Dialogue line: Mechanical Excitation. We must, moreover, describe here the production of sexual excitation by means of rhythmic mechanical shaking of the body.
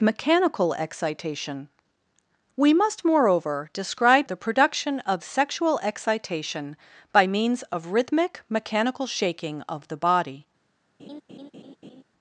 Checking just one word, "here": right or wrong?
wrong